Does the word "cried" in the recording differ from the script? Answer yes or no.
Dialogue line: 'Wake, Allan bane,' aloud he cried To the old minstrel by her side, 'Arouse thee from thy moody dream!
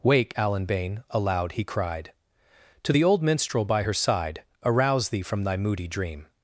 no